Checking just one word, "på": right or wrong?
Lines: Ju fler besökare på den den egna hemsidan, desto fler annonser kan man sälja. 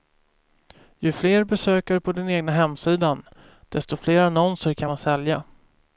right